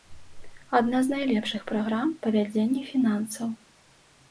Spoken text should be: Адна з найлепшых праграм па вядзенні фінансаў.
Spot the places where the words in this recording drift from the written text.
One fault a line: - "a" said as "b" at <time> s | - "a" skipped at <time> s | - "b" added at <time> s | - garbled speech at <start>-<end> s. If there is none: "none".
none